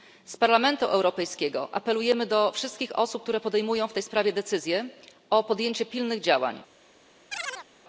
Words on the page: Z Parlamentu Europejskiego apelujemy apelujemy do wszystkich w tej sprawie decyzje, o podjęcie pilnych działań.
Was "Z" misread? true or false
false